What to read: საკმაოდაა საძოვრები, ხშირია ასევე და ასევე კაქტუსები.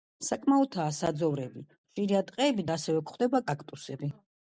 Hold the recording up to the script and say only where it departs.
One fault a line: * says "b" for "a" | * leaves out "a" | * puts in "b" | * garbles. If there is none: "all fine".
* says "ტყეები" for "ასევე"
* puts in "გვხვდება"